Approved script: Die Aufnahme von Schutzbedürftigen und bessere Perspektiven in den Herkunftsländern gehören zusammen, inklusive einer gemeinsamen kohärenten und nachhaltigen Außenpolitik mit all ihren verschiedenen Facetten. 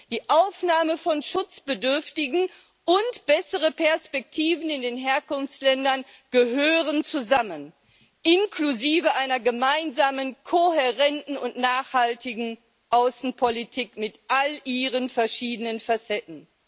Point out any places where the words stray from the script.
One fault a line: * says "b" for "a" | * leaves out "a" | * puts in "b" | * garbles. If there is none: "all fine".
all fine